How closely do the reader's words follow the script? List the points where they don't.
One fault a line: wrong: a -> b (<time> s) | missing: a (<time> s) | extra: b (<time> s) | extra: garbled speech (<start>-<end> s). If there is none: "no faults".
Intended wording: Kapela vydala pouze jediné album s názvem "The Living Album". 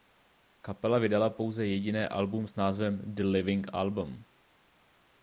no faults